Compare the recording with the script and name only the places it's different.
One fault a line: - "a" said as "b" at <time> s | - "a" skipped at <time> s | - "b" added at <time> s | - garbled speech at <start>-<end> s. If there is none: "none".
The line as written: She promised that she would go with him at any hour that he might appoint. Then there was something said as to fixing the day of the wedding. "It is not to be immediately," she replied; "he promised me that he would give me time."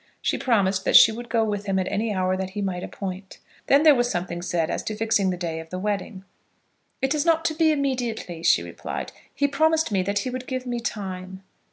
none